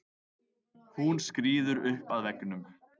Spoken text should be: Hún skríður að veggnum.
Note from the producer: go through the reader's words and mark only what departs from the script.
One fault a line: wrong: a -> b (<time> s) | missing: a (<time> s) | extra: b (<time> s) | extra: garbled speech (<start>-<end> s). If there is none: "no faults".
extra: upp (1.9 s)